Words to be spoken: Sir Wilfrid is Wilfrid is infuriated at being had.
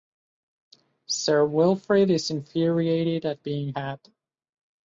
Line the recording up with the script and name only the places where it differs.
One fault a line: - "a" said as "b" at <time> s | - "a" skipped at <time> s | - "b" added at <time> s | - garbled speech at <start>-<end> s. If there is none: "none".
- "Wilfrid is" skipped at 2.3 s